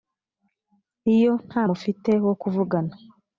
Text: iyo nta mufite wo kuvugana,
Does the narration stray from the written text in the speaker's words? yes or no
no